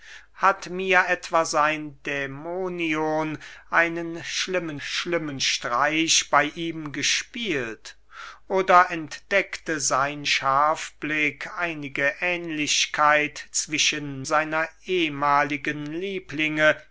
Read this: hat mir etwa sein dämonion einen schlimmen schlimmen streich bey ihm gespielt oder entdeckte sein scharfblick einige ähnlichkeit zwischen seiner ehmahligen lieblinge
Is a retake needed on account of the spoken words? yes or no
no